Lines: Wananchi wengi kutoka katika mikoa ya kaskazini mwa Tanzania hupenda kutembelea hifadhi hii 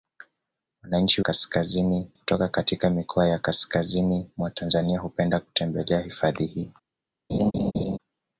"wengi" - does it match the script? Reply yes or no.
no